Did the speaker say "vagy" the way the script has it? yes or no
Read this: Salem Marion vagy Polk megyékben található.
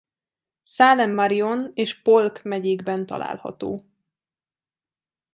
no